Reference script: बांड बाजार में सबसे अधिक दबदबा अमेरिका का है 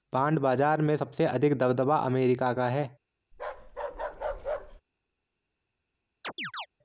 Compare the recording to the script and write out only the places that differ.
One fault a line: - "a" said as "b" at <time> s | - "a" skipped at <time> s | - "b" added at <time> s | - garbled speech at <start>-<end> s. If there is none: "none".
none